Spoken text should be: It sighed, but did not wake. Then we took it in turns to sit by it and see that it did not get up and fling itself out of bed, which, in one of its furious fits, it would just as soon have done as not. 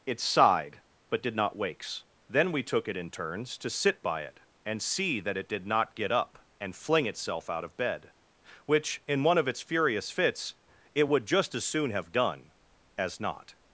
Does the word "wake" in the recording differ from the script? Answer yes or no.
yes